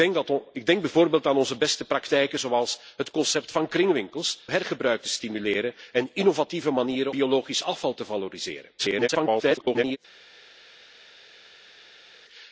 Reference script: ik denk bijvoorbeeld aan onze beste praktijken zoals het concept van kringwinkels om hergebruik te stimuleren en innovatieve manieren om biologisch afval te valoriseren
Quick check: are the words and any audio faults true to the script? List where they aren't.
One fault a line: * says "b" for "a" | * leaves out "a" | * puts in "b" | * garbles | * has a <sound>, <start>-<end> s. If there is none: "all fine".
* leaves out "om"
* leaves out "om"
* garbles